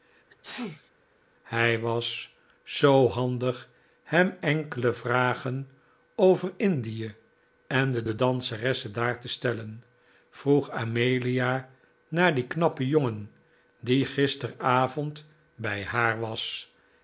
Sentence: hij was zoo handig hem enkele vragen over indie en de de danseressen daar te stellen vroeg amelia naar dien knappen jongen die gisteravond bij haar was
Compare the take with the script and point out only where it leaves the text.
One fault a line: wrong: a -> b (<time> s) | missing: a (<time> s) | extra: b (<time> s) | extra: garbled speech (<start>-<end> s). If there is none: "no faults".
no faults